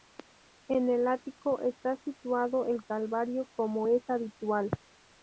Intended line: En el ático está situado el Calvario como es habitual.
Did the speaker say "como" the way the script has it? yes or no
yes